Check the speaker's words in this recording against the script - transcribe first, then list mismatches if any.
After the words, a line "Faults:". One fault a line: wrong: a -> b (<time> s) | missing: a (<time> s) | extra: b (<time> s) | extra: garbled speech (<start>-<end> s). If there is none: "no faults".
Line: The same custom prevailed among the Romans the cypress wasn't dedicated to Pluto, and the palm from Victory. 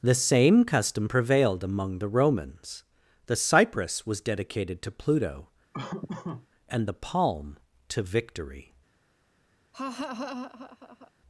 The same custom prevailed among the Romans the cypress was dedicated to Pluto, and the palm to Victory.
Faults:
wrong: wasn't -> was (4.0 s)
wrong: from -> to (7.9 s)